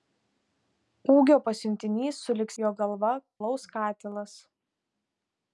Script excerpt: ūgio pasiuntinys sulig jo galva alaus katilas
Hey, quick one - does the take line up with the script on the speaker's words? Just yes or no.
yes